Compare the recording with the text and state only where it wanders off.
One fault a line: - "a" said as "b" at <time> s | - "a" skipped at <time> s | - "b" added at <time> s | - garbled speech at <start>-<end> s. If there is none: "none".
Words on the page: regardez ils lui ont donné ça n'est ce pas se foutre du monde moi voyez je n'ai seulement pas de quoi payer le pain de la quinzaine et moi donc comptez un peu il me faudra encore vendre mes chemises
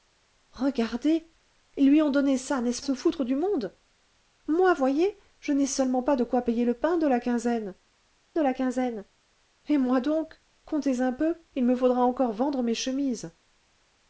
- "pas" skipped at 2.8 s
- "de la quinzaine" added at 8.3 s